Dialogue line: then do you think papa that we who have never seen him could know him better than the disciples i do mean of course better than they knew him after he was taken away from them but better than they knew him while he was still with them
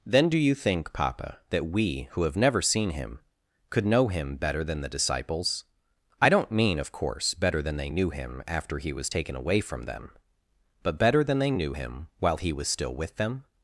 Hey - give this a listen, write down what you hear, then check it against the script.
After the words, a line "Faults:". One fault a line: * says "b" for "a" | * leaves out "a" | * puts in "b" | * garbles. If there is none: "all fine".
then do you think papa that we who have never seen him could know him better than the disciples i don't mean of course better than they knew him after he was taken away from them but better than they knew him while he was still with them
Faults:
* says "don't" for "do"